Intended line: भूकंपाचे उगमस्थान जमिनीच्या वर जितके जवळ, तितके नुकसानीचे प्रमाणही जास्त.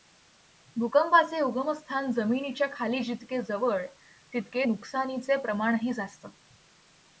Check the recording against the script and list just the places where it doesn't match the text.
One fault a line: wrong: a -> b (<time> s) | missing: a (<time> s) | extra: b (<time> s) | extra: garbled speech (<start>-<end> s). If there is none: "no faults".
wrong: वर -> खाली (2.7 s)